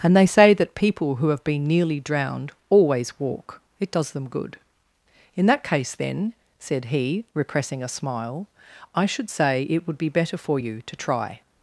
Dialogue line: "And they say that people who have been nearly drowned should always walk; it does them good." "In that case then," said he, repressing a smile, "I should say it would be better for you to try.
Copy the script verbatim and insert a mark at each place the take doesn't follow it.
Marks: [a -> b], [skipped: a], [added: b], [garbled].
"And they say that people who have been nearly drowned [skipped: should] always walk; it does them good." "In that case then," said he, repressing a smile, "I should say it would be better for you to try.